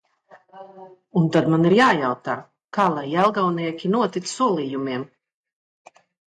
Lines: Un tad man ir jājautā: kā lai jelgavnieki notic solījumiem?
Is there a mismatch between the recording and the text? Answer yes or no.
no